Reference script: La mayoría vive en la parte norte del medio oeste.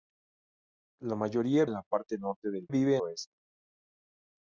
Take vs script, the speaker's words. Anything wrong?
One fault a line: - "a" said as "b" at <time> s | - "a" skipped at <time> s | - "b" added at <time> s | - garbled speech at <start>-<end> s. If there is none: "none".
- "vive" skipped at 1.6 s
- "medio" said as "vive" at 2.7 s